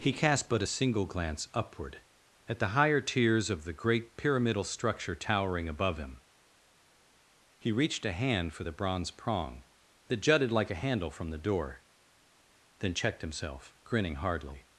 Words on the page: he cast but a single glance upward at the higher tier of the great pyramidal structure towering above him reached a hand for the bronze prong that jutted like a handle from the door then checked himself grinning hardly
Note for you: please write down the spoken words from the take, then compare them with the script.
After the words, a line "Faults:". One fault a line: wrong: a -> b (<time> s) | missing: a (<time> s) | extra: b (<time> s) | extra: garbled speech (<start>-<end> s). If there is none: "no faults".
he cast but a single glance upward at the higher tiers of the great pyramidal structure towering above him he reached a hand for the bronze prong that jutted like a handle from the door then checked himself grinning hardly
Faults:
wrong: tier -> tiers (3.0 s)
extra: he (7.6 s)